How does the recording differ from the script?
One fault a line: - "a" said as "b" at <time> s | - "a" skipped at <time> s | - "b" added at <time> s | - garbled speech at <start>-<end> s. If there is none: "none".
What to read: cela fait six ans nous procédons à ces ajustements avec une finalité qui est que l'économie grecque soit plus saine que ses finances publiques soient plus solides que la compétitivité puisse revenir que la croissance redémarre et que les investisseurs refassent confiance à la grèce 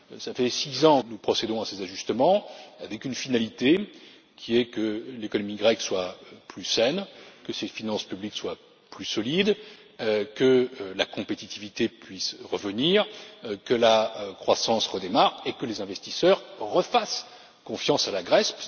none